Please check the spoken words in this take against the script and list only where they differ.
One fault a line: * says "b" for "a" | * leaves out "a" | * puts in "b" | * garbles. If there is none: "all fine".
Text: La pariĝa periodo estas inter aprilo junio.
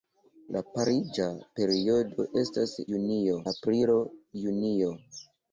* says "junio" for "inter"